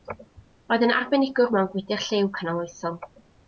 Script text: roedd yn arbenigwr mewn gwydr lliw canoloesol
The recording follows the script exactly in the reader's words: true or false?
true